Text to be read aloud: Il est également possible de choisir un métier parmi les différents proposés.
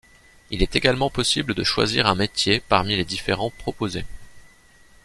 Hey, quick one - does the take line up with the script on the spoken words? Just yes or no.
yes